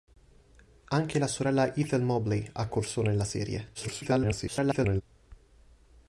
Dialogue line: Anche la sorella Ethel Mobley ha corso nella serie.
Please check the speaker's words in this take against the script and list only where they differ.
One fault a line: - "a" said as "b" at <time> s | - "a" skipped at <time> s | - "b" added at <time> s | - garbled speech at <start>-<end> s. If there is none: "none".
- garbled speech at 3.7-5.0 s